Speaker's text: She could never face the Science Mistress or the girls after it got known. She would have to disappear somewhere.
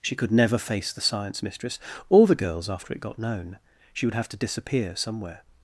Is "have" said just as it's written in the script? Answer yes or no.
yes